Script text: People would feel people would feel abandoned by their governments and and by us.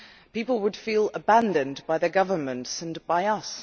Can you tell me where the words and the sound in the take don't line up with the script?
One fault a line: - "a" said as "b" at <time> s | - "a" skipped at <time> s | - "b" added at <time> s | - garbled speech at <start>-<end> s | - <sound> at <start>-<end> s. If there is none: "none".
- "people would feel" skipped at 1.1 s
- "and" skipped at 3.0 s